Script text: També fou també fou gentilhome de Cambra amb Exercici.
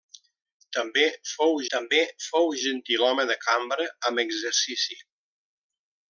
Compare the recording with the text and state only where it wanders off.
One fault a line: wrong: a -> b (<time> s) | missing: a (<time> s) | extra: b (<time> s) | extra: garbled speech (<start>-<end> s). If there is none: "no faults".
no faults